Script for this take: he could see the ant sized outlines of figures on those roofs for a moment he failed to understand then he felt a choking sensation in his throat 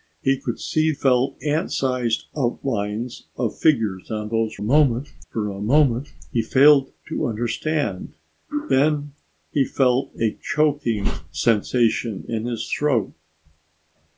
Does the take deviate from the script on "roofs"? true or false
true